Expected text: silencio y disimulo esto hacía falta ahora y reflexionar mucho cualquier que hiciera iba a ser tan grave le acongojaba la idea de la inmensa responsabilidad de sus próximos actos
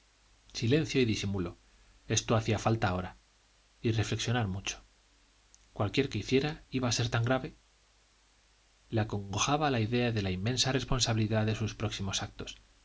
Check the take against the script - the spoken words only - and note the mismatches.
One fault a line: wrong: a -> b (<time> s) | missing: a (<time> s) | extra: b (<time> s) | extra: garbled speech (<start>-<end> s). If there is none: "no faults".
no faults